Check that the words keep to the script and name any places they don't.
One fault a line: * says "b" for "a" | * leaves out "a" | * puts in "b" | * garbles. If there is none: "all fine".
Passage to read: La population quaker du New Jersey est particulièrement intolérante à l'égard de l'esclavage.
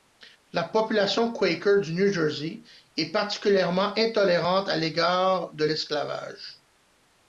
all fine